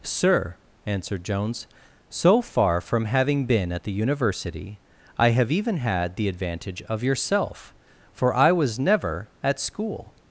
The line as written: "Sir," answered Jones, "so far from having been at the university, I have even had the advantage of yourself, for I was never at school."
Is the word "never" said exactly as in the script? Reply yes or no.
yes